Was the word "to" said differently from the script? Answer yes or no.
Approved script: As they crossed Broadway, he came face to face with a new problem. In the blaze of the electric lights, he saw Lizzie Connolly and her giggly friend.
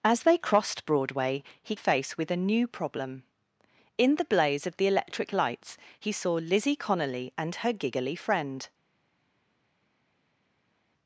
yes